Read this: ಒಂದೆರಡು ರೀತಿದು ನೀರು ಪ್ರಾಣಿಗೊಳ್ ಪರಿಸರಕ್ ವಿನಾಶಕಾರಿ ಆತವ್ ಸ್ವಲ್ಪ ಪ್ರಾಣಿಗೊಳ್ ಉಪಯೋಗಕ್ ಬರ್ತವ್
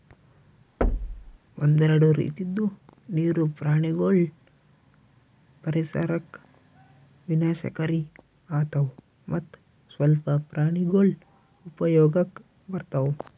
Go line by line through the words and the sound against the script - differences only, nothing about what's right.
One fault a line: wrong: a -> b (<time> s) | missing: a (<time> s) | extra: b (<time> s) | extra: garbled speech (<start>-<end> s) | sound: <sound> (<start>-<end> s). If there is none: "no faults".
sound: thud (0.8-1.4 s)
extra: ಮತ್ತ್ (9.3 s)